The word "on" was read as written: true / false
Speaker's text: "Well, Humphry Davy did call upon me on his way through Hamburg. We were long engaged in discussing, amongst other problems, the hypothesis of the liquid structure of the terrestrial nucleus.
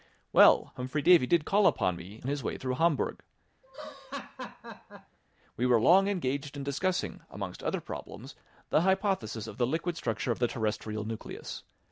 false